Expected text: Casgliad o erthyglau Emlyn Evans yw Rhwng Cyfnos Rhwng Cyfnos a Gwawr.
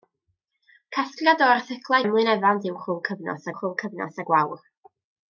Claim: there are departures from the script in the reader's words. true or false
false